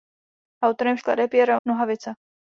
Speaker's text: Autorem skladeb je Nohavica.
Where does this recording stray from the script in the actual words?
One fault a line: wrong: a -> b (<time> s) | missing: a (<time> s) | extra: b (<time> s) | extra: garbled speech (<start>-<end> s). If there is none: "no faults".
no faults